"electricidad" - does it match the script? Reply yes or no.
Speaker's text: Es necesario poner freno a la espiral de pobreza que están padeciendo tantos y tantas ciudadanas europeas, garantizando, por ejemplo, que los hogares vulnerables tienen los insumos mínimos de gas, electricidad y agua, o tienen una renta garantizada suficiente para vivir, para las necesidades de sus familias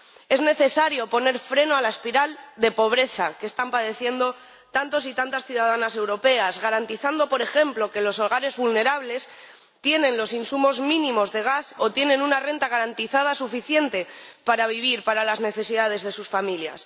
no